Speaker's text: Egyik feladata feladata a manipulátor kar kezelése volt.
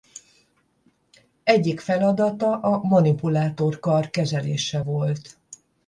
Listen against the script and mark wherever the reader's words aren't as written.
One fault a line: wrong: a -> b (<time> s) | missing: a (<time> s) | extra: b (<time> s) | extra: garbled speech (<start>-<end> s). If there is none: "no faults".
missing: feladata (2.6 s)